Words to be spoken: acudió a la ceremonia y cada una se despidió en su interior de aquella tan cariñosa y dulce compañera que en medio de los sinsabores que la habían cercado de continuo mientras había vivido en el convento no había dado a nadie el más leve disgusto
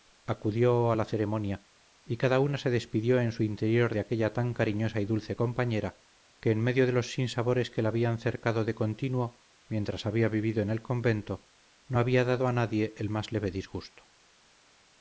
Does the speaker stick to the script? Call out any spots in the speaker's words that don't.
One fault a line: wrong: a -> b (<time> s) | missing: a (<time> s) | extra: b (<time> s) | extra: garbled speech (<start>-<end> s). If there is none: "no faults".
no faults